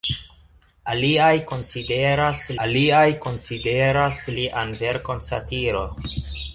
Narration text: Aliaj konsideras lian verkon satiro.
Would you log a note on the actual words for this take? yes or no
yes